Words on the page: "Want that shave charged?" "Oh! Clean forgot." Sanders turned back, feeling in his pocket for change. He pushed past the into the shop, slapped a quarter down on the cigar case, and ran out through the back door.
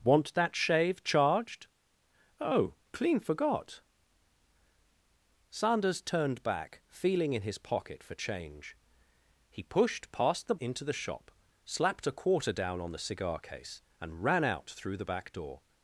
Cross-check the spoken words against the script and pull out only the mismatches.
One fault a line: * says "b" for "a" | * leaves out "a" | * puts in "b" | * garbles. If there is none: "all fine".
all fine